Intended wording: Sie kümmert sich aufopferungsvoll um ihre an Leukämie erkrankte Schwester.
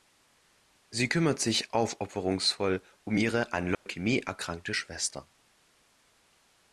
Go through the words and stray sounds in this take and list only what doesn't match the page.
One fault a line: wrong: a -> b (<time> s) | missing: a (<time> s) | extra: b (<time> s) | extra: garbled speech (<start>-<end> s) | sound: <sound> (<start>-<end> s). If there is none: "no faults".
sound: dropout (3.7-3.9 s)